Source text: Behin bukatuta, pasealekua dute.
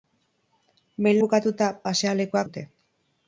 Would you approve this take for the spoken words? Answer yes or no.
yes